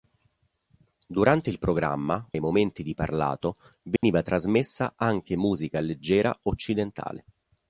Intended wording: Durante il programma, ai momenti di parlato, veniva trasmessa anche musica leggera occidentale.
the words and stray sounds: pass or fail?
fail